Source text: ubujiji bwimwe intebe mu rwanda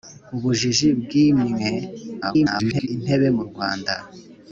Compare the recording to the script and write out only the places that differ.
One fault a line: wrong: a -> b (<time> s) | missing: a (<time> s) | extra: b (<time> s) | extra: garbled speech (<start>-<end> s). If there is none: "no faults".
extra: garbled speech (2.2-2.9 s)